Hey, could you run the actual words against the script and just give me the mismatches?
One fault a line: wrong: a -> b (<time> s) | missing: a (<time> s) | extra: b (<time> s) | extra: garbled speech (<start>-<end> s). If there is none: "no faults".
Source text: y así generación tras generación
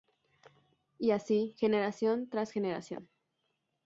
no faults